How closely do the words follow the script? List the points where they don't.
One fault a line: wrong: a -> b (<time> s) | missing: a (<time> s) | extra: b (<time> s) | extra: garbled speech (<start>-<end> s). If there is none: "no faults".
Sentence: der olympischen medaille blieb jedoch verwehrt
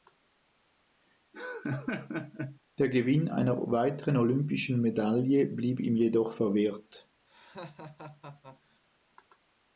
extra: gewinn einer weiteren (2.9 s)
extra: ihm (5.8 s)